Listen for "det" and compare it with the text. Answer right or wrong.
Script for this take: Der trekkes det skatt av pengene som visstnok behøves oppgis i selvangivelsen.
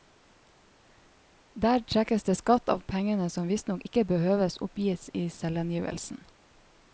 right